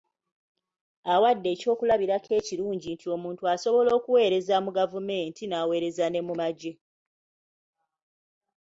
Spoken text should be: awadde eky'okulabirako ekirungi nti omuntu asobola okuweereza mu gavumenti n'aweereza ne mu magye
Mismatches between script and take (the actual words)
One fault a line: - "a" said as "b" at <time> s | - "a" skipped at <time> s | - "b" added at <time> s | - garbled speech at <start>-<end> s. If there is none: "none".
none